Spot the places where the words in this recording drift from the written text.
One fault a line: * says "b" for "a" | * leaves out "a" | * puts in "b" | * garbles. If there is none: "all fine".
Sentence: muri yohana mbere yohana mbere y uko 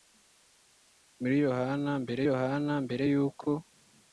all fine